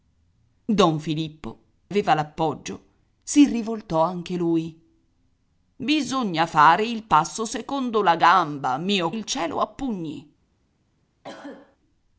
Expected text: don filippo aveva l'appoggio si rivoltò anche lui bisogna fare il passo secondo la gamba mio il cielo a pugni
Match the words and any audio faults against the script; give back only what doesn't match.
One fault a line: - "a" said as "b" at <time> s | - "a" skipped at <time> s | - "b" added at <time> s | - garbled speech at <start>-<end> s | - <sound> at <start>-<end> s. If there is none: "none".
- cough at 11.2-11.8 s